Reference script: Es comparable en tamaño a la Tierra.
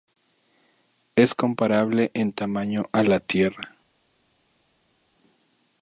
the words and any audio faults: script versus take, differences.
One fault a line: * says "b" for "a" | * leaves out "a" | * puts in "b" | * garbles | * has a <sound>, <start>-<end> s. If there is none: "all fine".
all fine